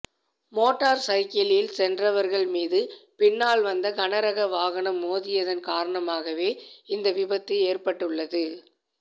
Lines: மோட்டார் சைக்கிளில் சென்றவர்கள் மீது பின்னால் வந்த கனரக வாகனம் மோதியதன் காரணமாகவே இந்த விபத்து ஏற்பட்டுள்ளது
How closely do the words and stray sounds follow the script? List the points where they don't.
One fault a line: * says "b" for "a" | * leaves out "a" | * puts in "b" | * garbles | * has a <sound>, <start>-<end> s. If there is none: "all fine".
all fine